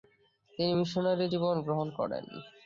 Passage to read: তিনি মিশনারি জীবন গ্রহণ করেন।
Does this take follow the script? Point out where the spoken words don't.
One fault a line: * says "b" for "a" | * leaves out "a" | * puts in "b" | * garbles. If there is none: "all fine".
all fine